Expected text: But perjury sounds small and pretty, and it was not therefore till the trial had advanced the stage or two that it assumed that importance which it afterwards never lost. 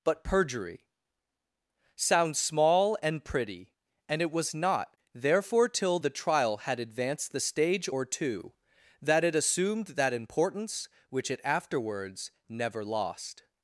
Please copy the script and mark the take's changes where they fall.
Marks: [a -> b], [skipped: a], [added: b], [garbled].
But perjury sounds small and pretty, and it was not therefore till the trial had advanced the stage or two that it assumed that importance which it afterwards never lost.